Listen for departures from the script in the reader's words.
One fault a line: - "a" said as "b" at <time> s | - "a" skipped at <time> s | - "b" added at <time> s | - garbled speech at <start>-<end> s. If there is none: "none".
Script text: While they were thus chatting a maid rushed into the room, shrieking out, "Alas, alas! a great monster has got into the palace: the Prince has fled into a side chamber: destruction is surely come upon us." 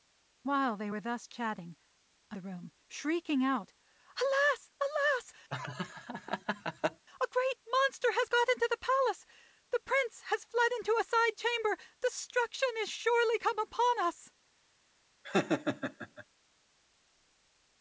- "maid rushed into" skipped at 2.4 s